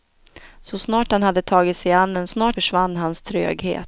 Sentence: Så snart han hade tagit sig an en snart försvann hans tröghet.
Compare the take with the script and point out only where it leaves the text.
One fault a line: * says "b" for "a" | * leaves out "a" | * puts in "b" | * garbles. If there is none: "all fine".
all fine